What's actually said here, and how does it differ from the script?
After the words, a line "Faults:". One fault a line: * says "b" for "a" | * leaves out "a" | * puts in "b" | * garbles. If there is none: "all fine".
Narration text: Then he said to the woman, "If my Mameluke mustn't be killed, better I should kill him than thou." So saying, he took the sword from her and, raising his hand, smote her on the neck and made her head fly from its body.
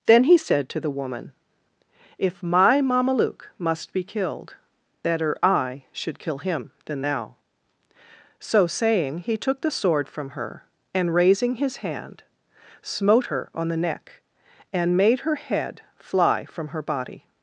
Then he said to the woman, "If my Mameluke must be killed, better I should kill him than thou." So saying, he took the sword from her and, raising his hand, smote her on the neck and made her head fly from her body.
Faults:
* says "must" for "mustn't"
* says "her" for "its"